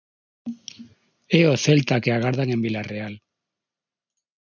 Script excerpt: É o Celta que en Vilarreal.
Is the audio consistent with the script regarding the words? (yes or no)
no